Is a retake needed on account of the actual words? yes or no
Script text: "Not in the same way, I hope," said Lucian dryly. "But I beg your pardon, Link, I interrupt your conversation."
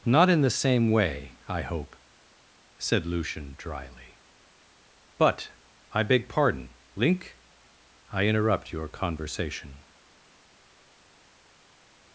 yes